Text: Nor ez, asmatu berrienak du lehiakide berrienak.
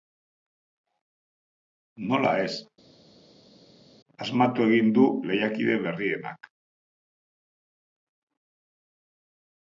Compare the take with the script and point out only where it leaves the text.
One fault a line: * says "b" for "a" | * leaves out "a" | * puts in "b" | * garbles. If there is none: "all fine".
* says "Nola" for "Nor"
* says "egin" for "berrienak"